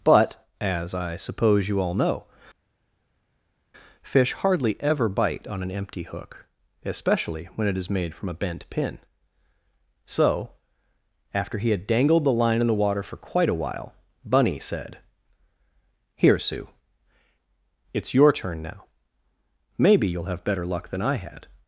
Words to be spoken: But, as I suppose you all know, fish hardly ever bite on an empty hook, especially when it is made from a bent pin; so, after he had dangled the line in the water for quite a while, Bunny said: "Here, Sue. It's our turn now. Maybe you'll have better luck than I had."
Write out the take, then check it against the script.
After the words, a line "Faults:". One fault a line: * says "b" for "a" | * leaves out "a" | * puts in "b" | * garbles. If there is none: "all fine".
But, as I suppose you all know, fish hardly ever bite on an empty hook, especially when it is made from a bent pin; so, after he had dangled the line in the water for quite a while, Bunny said: "Here, Sue. It's your turn now. Maybe you'll have better luck than I had."
Faults:
* says "your" for "our"